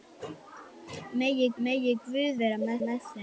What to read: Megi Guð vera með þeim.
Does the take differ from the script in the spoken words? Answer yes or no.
yes